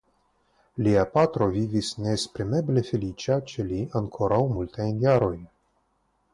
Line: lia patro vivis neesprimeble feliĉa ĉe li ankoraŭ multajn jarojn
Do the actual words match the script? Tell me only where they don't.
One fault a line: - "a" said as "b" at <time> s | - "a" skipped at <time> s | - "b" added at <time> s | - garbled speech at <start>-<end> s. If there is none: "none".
none